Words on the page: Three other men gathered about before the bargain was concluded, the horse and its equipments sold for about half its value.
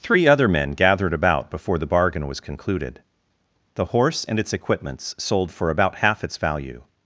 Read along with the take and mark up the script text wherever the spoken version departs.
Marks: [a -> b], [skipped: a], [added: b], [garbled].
Three other men gathered about before the bargain was concluded, the horse and its equipments sold for about half its value.